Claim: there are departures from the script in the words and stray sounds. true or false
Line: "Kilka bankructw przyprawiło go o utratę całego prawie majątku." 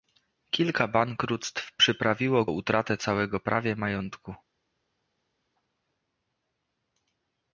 true